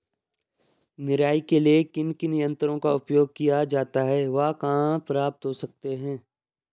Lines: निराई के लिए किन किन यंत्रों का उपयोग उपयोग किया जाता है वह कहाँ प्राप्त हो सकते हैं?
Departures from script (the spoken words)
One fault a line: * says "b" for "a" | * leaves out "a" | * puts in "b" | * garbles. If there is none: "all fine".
* leaves out "उपयोग"